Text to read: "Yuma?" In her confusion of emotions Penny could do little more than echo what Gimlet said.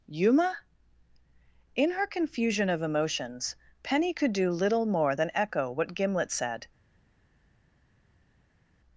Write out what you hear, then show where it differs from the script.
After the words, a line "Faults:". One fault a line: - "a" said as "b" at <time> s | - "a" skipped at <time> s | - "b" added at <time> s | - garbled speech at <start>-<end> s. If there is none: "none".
"Yuma?" In her confusion of emotions Penny could do little more than echo what Gimlet said.
Faults:
none